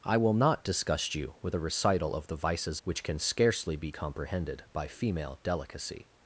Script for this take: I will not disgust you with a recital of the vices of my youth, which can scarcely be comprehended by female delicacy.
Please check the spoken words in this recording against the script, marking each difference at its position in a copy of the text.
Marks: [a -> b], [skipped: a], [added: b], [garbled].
I will not disgust you with a recital of the vices [skipped: of my youth,] which can scarcely be comprehended by female delicacy.